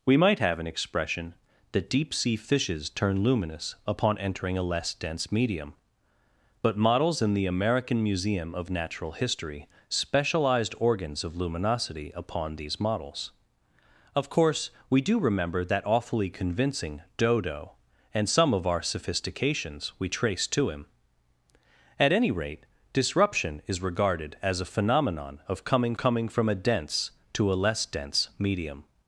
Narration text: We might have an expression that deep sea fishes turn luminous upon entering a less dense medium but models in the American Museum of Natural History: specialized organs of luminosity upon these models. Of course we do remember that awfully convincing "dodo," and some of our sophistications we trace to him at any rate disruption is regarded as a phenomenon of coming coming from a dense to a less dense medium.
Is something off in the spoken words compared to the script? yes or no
no